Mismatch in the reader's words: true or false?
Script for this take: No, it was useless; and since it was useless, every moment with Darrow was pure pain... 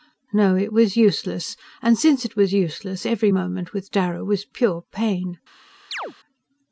false